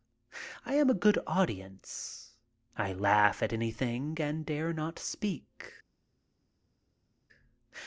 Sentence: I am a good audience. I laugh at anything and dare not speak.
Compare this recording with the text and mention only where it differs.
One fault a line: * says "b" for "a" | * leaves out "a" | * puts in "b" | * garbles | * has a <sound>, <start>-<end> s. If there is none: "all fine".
all fine